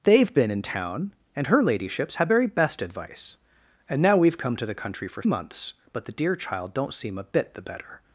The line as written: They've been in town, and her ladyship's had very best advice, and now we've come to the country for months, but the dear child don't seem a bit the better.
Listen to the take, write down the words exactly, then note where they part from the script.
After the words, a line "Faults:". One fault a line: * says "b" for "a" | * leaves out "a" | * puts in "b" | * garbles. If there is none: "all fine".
They've been in town, and her ladyship's had very best advice, and now we've come to the country for months, but the dear child don't seem a bit the better.
Faults:
all fine